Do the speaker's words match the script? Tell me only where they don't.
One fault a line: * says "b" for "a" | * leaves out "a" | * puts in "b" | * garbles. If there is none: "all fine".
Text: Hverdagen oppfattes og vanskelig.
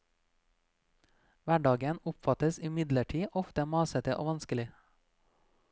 * puts in "imidlertid ofte masete"